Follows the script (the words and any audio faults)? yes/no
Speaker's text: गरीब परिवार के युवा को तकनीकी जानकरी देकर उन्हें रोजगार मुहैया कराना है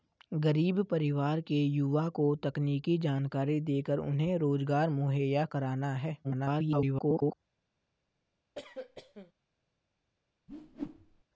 no